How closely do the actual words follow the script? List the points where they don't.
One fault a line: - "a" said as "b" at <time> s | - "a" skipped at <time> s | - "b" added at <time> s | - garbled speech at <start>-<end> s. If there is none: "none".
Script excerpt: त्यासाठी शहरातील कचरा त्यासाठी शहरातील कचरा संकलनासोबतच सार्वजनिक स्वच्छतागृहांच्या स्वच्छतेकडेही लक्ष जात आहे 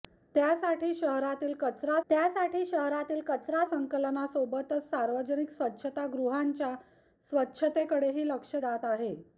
none